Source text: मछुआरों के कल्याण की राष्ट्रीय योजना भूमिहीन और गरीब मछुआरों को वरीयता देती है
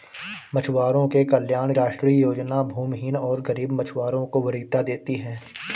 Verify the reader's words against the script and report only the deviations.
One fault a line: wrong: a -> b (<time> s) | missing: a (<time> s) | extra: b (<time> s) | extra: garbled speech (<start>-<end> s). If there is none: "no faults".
missing: की (1.7 s)